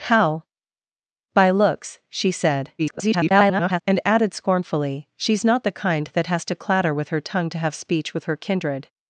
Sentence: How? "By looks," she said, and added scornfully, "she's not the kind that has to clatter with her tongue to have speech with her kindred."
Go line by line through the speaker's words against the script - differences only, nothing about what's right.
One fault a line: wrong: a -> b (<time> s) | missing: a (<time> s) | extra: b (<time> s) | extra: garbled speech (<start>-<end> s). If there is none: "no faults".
extra: garbled speech (2.8-3.8 s)